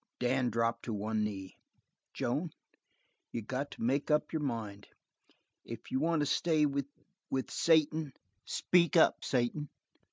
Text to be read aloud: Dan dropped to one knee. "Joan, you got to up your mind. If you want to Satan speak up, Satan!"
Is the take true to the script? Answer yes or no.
no